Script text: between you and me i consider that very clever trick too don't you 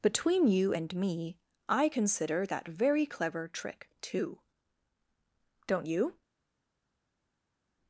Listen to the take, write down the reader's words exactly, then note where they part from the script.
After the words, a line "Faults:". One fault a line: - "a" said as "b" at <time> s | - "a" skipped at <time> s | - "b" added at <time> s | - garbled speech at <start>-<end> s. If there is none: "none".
between you and me i consider that very clever trick too don't you
Faults:
none